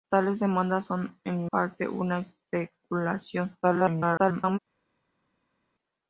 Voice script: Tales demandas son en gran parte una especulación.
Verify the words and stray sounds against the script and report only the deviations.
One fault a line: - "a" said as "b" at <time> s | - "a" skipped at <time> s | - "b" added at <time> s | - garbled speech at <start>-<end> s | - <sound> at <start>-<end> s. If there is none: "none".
- "gran" skipped at 1.5 s
- garbled speech at 3.6-4.6 s